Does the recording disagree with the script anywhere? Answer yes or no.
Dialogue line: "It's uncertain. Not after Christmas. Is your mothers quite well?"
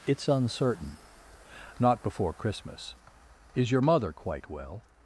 yes